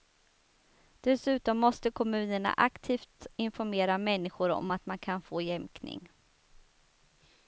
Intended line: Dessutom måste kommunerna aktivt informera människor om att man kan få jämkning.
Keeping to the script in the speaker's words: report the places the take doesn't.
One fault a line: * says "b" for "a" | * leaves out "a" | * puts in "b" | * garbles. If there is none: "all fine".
all fine